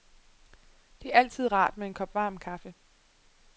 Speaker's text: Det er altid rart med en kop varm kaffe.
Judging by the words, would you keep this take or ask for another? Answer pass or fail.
pass